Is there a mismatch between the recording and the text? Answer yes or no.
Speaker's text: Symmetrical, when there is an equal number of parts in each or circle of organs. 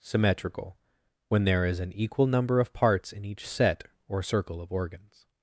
yes